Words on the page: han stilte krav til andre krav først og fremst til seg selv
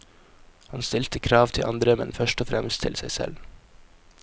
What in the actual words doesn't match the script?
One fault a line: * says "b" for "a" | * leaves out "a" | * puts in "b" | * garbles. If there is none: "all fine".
* says "men" for "krav"